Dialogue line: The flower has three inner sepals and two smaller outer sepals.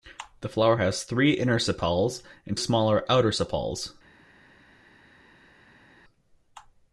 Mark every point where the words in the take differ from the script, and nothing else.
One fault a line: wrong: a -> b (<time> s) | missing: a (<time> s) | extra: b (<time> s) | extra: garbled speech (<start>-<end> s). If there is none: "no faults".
missing: two (2.6 s)